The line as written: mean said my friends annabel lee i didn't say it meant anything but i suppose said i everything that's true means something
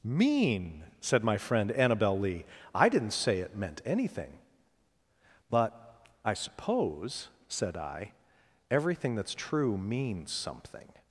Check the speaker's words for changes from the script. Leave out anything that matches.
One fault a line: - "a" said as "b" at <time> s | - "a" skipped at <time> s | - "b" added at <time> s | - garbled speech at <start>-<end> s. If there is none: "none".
- "friends" said as "friend" at 1.4 s